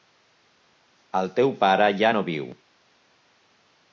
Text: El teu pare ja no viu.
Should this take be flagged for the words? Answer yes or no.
no